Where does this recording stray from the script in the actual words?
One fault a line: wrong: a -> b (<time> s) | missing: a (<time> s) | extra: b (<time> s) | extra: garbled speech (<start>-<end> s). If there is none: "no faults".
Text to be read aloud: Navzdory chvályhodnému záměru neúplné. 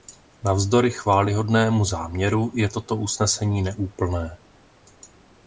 extra: je toto usnesení (2.5 s)